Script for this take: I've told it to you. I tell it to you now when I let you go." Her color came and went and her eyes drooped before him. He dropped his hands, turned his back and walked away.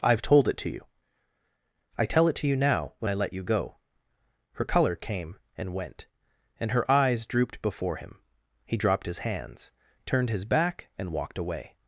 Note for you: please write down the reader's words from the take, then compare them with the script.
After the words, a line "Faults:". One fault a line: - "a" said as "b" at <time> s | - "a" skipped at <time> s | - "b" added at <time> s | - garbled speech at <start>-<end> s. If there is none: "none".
I've told it to you. I tell it to you now when I let you go." Her color came and went and her eyes drooped before him. He dropped his hands, turned his back and walked away.
Faults:
none